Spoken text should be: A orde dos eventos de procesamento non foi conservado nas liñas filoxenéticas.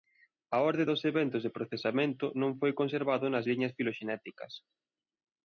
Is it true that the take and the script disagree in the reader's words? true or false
false